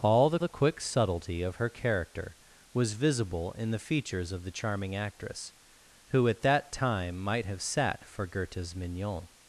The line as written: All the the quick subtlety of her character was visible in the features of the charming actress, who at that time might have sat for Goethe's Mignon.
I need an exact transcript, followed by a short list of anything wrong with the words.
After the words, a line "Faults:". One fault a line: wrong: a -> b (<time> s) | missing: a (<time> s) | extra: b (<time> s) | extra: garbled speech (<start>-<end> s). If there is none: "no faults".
All the the quick subtlety of her character was visible in the features of the charming actress, who at that time might have sat for Goethe's Mignon.
Faults:
no faults